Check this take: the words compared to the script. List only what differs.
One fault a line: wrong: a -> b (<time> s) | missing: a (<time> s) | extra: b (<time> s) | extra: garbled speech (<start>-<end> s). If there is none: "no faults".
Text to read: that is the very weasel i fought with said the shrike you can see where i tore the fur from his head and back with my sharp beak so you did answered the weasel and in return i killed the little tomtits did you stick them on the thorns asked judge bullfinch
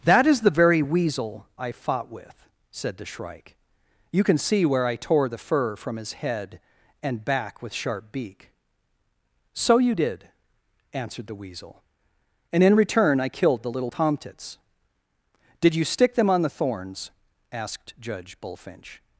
missing: my (7.7 s)